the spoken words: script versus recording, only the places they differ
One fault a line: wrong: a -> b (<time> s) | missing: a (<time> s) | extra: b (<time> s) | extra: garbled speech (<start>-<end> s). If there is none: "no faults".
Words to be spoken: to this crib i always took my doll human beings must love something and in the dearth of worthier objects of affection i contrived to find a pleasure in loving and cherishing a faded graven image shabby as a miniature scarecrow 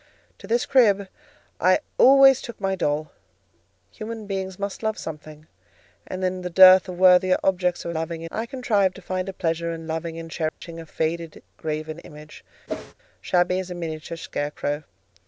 wrong: affection -> loving (7.9 s)